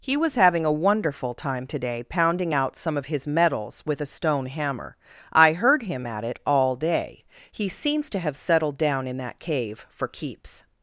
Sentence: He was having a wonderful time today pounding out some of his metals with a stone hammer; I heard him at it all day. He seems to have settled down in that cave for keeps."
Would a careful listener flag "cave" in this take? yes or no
no